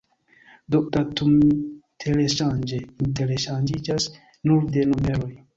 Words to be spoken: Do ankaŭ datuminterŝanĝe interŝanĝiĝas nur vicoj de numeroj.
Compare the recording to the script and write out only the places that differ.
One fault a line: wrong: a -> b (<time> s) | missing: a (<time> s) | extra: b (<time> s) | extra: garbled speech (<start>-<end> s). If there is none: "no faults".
missing: ankaŭ (0.8 s)
missing: vicoj (4.7 s)